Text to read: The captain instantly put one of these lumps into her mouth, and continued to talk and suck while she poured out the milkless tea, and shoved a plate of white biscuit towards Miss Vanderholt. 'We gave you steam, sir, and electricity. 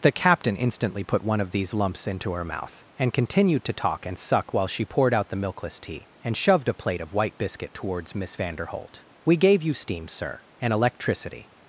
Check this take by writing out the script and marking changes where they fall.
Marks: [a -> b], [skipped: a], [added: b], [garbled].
The captain instantly put one of these lumps into her mouth, and continued to talk and suck while she poured out the milkless tea, and shoved a plate of white biscuit towards Miss Vanderholt. 'We gave you steam, sir, and electricity.